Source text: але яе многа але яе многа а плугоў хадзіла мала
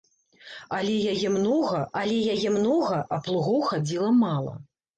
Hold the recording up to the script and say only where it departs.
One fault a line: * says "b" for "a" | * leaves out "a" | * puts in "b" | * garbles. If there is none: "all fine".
all fine